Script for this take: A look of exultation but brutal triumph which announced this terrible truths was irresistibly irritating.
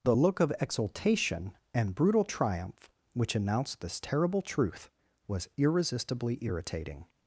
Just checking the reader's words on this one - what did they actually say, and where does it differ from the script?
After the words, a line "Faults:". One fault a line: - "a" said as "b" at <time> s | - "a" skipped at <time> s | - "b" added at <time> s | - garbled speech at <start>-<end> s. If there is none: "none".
The look of exultation and brutal triumph which announced this terrible truth was irresistibly irritating.
Faults:
- "A" said as "The" at 0.0 s
- "but" said as "and" at 1.7 s
- "truths" said as "truth" at 4.4 s